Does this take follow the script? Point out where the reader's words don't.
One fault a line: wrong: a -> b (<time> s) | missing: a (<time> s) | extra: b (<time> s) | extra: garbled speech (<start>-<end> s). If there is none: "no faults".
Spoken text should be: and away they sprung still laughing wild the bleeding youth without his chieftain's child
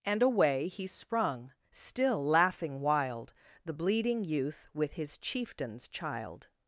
wrong: they -> he (0.7 s)
wrong: without -> with (4.7 s)